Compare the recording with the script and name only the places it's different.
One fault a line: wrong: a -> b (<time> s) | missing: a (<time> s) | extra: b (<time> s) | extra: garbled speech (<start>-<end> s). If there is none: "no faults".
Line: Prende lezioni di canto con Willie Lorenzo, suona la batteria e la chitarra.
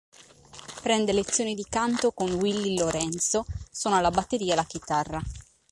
no faults